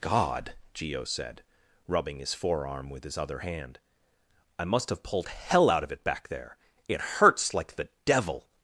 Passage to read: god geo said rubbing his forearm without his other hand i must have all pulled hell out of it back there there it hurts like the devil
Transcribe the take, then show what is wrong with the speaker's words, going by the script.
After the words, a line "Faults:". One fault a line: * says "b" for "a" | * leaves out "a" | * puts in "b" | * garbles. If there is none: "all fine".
god geo said rubbing his forearm with his other hand i must have pulled hell out of it back there it hurts like the devil
Faults:
* says "with" for "without"
* leaves out "all"
* leaves out "there"